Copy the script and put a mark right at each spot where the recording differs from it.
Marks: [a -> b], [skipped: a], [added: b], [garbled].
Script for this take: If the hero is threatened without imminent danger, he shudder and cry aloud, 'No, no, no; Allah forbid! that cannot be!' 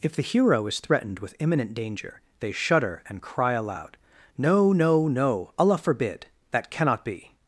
If the hero is threatened [without -> with] imminent danger, [he -> they] shudder and cry aloud, 'No, no, no; Allah forbid! that cannot be!'